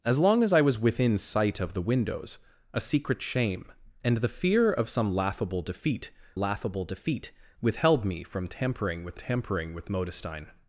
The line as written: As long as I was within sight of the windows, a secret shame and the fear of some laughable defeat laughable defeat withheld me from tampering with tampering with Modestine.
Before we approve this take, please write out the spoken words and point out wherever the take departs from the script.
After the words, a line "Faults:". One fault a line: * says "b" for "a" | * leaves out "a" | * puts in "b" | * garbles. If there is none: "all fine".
As long as I was within sight of the windows, a secret shame and the fear of some laughable defeat laughable defeat withheld me from tampering with tampering with Modestine.
Faults:
all fine